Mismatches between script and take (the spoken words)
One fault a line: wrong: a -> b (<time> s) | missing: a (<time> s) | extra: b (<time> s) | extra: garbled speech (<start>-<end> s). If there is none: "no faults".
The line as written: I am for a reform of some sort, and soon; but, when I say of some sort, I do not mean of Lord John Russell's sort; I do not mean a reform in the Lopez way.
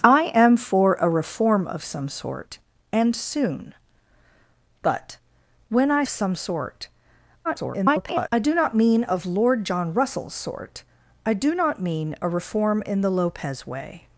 missing: say of (6.0 s)
extra: garbled speech (7.4-8.3 s)